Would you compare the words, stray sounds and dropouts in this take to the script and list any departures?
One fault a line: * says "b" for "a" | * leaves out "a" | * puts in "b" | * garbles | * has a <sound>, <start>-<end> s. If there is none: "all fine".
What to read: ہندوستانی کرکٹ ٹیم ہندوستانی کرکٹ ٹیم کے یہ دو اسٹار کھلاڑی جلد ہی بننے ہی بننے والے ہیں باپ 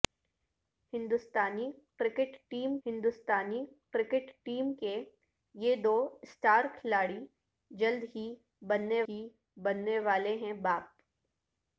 all fine